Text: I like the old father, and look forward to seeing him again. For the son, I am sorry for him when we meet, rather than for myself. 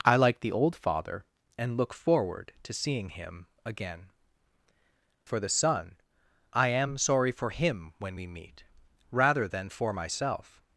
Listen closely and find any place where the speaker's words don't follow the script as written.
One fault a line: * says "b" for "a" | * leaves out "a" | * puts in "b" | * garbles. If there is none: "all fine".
all fine